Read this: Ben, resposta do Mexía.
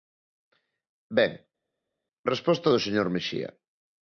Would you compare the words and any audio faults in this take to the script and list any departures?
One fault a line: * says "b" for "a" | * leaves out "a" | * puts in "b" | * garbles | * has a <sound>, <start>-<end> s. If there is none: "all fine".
* puts in "señor"